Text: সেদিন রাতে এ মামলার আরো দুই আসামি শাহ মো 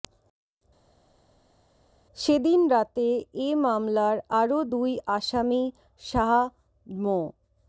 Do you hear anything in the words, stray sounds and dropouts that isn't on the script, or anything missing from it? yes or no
no